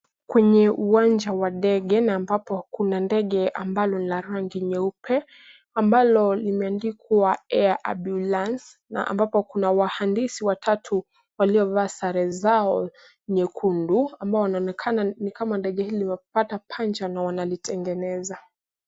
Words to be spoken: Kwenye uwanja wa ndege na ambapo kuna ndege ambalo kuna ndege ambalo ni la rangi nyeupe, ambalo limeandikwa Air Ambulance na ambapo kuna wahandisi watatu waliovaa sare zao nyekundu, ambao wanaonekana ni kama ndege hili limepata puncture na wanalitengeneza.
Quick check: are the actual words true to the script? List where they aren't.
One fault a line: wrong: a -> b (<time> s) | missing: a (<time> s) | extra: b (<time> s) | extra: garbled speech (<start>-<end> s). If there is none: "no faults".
missing: kuna ndege ambalo (4.0 s)